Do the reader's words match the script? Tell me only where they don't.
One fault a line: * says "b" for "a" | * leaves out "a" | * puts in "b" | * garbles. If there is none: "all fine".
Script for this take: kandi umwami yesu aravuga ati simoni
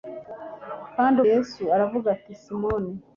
* leaves out "umwami"